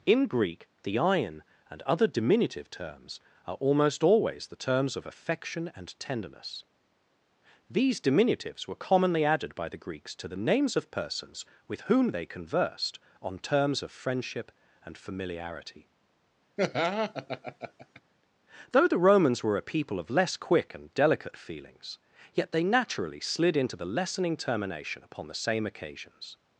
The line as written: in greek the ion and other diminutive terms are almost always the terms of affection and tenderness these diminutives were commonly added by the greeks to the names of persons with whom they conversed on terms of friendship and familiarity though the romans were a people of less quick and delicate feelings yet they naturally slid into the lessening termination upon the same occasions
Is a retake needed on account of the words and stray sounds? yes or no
yes